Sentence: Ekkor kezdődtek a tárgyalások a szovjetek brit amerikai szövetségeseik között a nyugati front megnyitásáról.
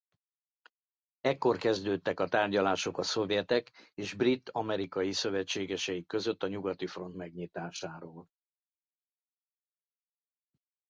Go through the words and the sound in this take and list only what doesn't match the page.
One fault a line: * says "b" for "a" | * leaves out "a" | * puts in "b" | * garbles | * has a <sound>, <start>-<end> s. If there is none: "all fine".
* puts in "és"